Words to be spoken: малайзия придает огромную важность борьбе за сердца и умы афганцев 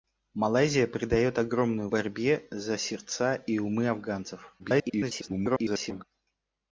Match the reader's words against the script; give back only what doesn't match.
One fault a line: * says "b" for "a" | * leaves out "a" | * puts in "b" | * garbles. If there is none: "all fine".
* leaves out "важность"
* garbles